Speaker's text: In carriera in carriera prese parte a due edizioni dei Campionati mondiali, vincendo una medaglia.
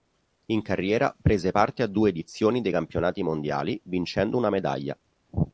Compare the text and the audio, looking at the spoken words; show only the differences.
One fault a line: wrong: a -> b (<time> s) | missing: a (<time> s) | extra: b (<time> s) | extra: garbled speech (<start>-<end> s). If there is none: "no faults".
missing: in carriera (1.1 s)